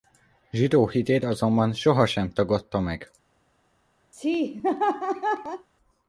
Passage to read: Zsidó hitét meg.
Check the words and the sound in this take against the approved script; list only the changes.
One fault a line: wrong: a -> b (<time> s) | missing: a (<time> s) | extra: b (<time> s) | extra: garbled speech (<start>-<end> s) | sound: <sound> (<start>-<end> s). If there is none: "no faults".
extra: azonban sohasem tagadta (1.2 s)
sound: laugh (4.1-5.7 s)